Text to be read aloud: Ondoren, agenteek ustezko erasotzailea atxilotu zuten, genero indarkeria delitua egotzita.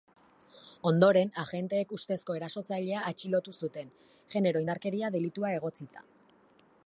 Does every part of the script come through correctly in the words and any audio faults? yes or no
yes